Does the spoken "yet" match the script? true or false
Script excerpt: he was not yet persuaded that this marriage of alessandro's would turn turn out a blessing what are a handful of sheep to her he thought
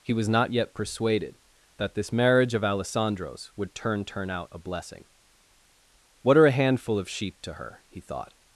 true